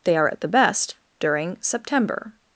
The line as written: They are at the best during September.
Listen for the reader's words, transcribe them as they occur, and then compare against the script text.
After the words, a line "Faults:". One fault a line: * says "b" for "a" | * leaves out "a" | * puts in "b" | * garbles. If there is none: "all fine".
They are at the best during September.
Faults:
all fine